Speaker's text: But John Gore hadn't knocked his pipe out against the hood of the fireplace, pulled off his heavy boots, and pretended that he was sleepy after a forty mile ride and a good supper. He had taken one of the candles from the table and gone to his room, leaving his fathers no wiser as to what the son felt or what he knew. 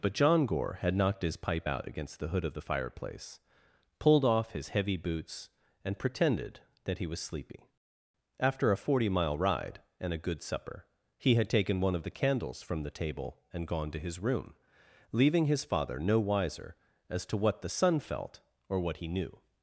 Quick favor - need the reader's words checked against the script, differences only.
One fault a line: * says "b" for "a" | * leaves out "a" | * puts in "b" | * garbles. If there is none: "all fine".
* says "had" for "hadn't"
* says "father" for "fathers"